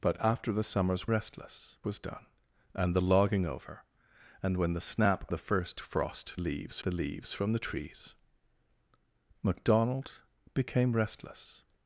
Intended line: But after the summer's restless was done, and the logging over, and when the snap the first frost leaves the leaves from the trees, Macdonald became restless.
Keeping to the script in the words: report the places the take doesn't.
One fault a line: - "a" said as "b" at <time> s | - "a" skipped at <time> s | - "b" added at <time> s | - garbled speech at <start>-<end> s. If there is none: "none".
none